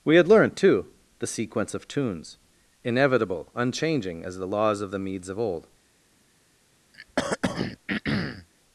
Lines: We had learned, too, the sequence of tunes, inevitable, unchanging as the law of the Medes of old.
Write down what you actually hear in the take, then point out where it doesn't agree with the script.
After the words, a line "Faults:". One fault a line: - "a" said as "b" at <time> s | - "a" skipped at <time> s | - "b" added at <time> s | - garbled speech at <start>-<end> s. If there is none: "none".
We had learned, too, the sequence of tunes, inevitable, unchanging as the laws of the Medes of old.
Faults:
- "law" said as "laws" at 4.5 s